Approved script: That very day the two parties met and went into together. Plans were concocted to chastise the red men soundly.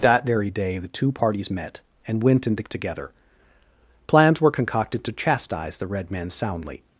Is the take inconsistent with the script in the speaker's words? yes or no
no